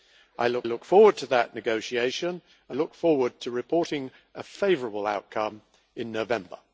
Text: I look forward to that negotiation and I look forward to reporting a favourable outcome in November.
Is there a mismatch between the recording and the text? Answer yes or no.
yes